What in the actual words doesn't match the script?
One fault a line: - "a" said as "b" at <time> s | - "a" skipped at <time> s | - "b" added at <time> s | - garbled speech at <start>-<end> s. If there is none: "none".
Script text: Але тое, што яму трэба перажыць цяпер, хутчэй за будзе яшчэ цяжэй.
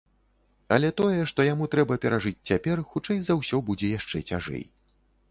- "ўсё" added at 3.4 s